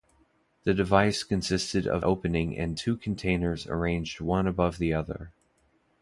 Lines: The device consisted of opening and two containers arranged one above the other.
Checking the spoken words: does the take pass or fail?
pass